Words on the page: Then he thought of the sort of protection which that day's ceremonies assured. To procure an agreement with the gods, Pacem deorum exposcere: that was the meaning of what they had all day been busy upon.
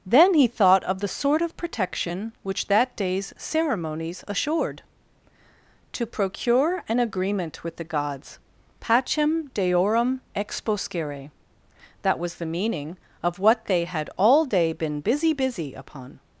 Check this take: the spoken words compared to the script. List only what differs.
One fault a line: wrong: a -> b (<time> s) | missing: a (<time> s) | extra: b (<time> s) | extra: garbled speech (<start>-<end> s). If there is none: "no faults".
extra: busy (15.3 s)